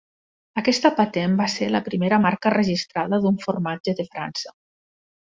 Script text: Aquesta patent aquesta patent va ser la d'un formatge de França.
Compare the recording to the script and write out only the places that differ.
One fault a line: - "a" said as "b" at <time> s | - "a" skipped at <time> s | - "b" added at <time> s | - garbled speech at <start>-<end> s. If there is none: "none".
- "aquesta patent" skipped at 1.4 s
- "primera marca registrada" added at 1.9 s